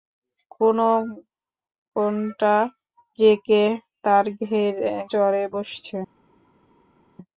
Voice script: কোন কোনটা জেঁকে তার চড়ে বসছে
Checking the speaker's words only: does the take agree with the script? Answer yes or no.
yes